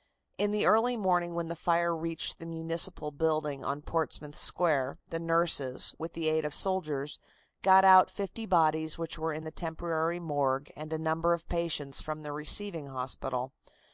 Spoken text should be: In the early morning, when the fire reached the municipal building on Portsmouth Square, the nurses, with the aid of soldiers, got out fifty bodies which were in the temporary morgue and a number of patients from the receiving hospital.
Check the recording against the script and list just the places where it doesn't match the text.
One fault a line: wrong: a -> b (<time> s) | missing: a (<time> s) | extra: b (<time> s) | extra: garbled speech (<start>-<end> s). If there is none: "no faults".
no faults